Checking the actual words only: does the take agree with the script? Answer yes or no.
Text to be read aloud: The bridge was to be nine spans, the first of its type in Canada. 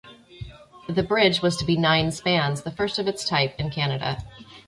yes